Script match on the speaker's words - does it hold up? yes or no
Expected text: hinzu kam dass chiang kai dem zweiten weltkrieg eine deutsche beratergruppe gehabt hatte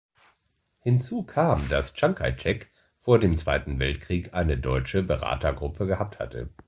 no